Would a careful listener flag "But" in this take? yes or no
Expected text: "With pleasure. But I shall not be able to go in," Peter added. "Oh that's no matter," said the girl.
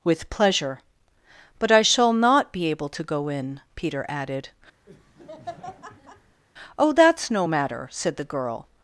no